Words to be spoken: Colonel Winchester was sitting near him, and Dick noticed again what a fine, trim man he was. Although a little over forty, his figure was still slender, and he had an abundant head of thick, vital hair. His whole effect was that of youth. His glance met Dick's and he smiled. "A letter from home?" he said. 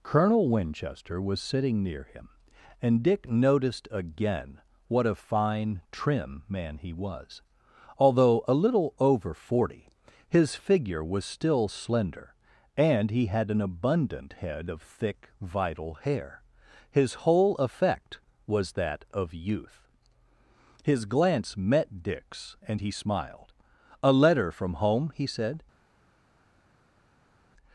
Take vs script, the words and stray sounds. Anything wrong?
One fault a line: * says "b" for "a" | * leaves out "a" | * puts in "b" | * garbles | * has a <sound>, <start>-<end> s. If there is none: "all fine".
all fine